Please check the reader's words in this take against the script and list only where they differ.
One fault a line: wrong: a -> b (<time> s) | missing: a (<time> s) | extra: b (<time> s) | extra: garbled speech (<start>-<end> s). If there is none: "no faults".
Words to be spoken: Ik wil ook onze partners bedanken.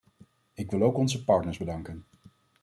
no faults